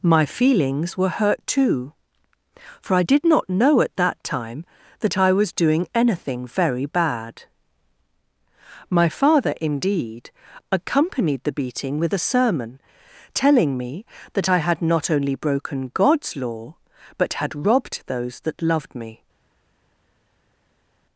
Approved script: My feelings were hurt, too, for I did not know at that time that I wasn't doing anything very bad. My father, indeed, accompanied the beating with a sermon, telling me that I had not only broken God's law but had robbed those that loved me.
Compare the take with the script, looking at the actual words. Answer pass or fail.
fail